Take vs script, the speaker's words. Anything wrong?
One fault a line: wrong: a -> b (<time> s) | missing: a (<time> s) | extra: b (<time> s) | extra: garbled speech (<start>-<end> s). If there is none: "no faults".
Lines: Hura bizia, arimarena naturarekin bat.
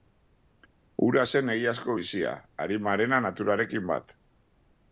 extra: zen egiazko (1.3 s)